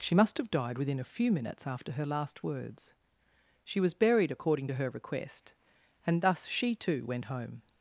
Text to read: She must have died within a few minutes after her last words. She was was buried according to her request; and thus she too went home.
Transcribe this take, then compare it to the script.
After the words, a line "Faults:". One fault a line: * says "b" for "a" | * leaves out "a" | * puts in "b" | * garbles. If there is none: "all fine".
She must have died within a few minutes after her last words. She was buried according to her request; and thus she too went home.
Faults:
* leaves out "was"